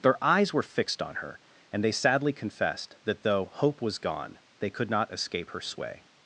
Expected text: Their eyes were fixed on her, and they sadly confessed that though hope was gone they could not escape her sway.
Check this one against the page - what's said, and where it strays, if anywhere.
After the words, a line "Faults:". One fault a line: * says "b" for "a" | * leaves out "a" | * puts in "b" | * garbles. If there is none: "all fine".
Their eyes were fixed on her, and they sadly confessed that though hope was gone they could not escape her sway.
Faults:
all fine